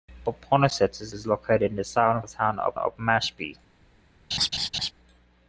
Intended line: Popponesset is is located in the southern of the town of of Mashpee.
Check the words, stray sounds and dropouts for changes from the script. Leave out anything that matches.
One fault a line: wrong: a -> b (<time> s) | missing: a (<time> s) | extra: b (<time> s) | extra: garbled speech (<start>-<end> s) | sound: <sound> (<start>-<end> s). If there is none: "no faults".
sound: laugh (4.3-4.9 s)